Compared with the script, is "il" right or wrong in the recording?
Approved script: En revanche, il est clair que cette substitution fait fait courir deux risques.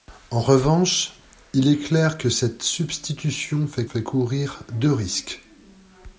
right